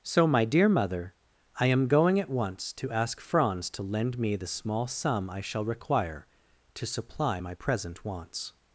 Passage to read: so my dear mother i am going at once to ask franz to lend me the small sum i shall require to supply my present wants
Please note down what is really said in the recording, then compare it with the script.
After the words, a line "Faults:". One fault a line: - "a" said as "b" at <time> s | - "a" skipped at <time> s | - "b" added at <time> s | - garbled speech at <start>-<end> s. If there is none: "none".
so my dear mother i am going at once to ask franz to lend me the small sum i shall require to supply my present wants
Faults:
none